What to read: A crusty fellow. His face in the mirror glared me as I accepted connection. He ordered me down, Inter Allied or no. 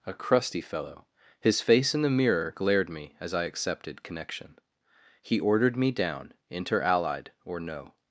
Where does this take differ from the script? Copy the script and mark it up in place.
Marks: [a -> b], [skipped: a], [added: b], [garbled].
A crusty fellow. His face in the mirror glared me as I accepted connection. He ordered me down, Inter Allied or no.